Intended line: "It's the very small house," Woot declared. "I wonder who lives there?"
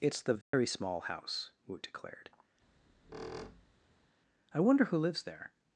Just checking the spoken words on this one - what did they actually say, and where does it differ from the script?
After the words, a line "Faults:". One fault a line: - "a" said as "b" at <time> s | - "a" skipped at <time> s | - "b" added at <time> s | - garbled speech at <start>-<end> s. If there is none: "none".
"It's the very small house," Woot declared. "I wonder who lives there?"
Faults:
none